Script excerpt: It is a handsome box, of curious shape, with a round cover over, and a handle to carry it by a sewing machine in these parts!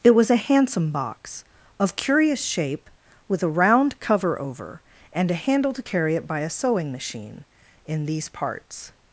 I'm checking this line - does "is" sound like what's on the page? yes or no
no